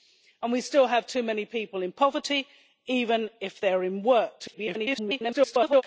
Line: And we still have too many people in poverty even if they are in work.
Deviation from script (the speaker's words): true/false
true